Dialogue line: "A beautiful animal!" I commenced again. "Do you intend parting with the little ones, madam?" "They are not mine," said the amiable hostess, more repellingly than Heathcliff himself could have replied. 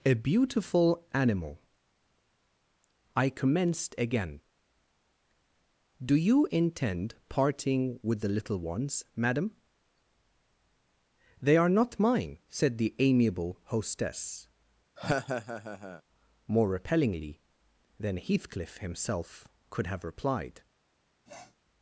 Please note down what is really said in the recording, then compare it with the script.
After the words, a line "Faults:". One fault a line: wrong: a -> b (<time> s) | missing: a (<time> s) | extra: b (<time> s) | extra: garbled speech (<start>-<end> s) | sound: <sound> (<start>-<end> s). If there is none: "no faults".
"A beautiful animal!" I commenced again. "Do you intend parting with the little ones, madam?" "They are not mine," said the amiable hostess, more repellingly than Heathcliff himself could have replied.
Faults:
sound: laugh (15.0-16.0 s)
sound: sniff (21.2-21.6 s)